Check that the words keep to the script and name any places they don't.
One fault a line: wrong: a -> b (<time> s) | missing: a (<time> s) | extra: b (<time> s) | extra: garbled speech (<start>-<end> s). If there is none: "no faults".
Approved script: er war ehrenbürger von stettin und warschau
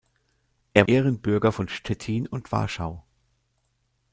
missing: war (0.9 s)